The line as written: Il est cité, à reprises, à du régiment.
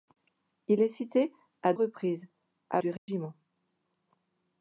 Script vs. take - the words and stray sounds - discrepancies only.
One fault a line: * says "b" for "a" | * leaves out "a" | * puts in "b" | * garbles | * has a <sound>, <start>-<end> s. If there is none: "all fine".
* has a dropout, 3.0-3.1 s